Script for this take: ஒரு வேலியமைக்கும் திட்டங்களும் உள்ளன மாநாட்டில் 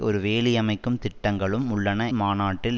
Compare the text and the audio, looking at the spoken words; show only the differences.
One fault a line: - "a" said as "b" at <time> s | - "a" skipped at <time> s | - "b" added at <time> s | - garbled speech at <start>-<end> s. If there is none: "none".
none